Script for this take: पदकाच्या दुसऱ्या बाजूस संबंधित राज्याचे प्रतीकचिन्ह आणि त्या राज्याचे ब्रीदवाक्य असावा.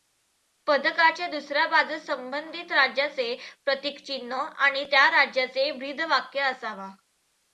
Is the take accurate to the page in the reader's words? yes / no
yes